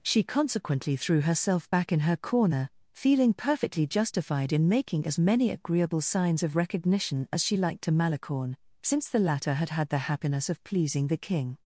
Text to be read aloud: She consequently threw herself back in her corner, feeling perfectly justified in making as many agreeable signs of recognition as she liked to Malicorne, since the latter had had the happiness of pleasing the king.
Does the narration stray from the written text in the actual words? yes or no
no